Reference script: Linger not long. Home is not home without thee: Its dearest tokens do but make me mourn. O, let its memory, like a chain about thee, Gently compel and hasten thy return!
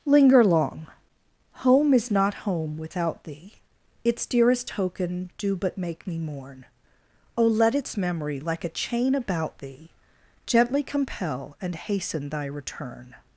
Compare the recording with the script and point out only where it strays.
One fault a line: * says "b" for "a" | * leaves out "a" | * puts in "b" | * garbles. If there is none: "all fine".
* leaves out "not"
* says "token" for "tokens"